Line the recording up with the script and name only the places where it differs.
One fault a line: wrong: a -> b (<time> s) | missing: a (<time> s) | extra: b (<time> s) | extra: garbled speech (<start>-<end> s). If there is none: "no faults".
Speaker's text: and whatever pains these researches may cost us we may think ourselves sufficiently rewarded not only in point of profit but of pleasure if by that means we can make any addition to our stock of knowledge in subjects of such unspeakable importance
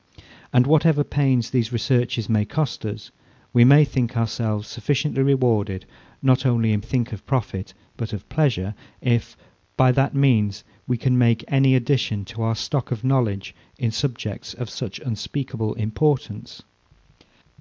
wrong: point -> think (6.8 s)